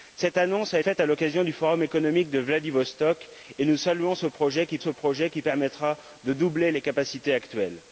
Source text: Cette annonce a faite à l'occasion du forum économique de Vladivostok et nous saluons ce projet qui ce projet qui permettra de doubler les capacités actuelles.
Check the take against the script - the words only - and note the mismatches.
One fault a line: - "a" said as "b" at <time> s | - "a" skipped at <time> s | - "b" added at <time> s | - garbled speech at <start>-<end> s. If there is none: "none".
none